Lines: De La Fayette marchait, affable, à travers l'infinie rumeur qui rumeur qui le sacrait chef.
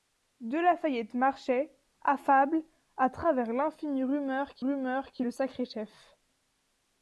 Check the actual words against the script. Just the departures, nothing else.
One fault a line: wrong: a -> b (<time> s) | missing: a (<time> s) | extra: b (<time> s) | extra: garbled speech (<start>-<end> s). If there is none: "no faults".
no faults